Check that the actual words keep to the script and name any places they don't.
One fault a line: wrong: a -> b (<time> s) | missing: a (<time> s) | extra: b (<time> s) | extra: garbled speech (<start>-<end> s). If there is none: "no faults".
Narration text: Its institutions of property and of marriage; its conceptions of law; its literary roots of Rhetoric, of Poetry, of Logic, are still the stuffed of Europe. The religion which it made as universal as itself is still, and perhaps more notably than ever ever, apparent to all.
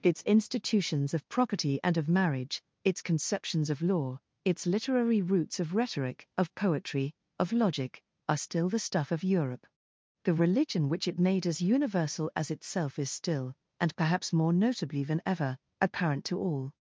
wrong: stuffed -> stuff (8.8 s)
missing: ever (15.6 s)